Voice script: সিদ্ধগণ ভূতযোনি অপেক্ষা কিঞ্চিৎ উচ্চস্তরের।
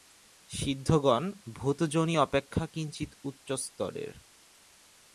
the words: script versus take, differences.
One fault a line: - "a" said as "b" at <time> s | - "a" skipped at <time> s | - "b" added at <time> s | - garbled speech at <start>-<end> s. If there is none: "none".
none